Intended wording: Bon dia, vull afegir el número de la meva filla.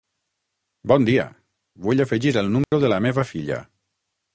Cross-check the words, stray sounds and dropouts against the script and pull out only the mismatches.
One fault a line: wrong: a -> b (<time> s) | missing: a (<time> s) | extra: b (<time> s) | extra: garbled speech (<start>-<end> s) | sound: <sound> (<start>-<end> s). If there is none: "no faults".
sound: dropout (2.6-2.7 s)